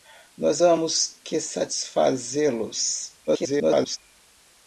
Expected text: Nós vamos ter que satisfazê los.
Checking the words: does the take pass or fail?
fail